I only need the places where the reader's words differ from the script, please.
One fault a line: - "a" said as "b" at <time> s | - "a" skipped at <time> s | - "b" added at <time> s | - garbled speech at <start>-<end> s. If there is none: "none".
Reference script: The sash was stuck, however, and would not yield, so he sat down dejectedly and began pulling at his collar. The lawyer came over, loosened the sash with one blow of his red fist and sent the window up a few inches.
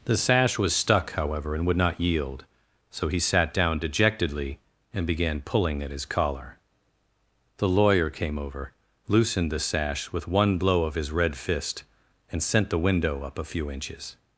none